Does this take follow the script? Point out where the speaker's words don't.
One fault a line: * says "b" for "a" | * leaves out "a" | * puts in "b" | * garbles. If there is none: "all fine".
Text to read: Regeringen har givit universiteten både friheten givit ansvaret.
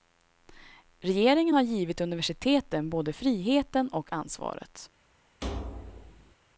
* says "och" for "givit"